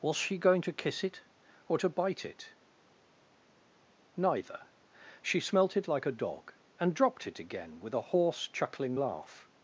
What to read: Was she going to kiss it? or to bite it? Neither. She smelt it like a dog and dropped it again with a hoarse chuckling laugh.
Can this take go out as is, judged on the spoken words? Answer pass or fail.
pass